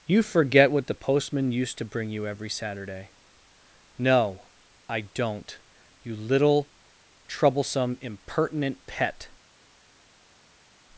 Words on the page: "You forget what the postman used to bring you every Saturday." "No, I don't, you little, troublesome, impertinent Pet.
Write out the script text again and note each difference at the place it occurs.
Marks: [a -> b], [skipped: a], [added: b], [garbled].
"You forget what the postman used to bring you every Saturday." "No, I don't, you little, troublesome, impertinent Pet.